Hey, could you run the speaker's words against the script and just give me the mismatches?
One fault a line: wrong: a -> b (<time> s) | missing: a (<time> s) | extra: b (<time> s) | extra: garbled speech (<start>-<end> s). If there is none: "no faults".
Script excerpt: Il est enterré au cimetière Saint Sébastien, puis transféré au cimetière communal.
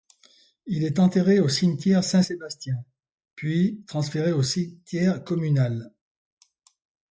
no faults